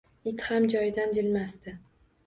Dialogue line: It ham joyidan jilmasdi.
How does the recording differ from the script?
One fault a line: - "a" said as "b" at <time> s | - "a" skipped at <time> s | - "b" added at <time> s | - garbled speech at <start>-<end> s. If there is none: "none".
none